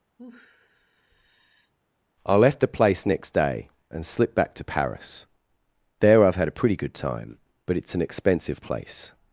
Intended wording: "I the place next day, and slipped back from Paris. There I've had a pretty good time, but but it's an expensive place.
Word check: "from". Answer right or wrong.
wrong